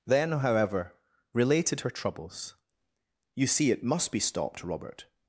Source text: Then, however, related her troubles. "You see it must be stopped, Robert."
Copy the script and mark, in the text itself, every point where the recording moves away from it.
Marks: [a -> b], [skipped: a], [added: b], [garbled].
Then, however, related her troubles. "You see it must be stopped, Robert."